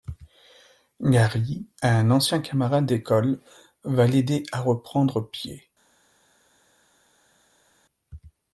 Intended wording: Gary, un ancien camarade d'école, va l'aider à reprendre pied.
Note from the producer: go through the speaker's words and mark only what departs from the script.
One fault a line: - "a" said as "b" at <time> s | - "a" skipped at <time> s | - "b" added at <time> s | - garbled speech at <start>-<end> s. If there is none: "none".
none